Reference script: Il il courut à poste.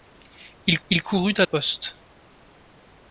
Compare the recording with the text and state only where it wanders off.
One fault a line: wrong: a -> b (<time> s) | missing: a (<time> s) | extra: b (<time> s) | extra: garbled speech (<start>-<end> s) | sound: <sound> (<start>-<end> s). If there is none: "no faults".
no faults